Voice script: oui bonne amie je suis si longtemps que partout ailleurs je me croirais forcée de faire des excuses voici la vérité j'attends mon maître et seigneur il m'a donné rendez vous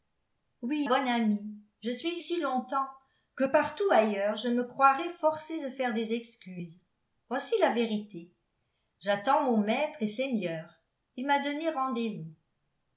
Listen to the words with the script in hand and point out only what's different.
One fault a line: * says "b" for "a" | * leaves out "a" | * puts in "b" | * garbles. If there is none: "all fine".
all fine